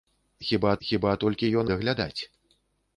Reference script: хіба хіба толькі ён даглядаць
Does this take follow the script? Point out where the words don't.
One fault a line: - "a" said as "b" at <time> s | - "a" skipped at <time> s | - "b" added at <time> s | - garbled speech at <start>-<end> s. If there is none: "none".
none